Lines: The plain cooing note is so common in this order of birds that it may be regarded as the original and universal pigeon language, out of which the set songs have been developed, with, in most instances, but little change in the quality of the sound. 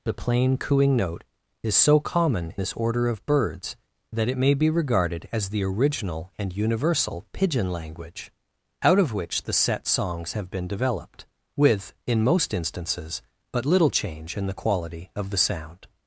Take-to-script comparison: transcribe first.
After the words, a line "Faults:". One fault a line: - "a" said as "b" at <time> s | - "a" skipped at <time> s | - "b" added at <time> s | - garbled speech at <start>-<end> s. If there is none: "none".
The plain cooing note is so common this order of birds that it may be regarded as the original and universal pigeon language, out of which the set songs have been developed, with, in most instances, but little change in the quality of the sound.
Faults:
- "in" skipped at 2.5 s